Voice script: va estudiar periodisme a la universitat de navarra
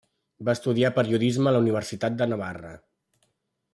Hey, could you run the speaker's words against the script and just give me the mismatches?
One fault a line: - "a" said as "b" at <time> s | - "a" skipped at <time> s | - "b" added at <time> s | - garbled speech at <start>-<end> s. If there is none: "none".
none